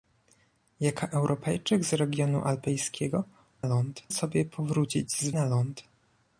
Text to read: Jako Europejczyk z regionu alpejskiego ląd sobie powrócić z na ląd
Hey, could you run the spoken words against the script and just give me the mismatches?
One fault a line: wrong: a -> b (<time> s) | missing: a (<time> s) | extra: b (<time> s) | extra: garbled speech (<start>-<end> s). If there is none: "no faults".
no faults